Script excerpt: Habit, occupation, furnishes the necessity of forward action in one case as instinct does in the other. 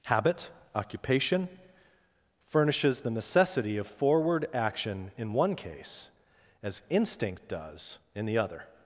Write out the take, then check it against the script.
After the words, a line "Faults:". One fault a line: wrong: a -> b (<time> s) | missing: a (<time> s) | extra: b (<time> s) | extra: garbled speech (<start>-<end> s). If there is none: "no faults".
Habit, occupation, furnishes the necessity of forward action in one case as instinct does in the other.
Faults:
no faults